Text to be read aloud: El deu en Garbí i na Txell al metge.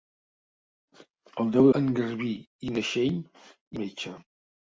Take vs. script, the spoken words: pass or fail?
pass